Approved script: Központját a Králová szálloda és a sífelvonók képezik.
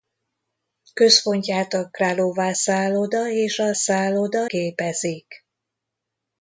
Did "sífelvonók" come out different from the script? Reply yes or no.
yes